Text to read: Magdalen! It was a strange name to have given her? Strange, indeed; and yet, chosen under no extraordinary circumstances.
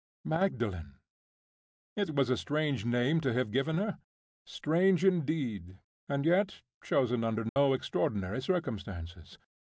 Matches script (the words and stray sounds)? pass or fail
fail